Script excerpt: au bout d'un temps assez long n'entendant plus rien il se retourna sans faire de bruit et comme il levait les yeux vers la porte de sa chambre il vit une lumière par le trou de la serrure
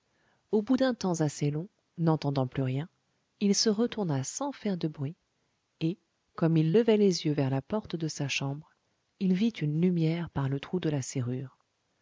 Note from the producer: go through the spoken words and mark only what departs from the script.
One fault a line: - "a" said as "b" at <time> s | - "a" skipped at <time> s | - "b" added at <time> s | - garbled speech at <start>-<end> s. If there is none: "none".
none